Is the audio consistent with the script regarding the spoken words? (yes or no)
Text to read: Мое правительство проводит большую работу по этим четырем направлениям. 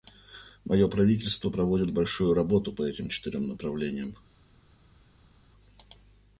yes